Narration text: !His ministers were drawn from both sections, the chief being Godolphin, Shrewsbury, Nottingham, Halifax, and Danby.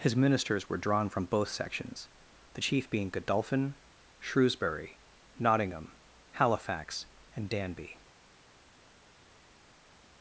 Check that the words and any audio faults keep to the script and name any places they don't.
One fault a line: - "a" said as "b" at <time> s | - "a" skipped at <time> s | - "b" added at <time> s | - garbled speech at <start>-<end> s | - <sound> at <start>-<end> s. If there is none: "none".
none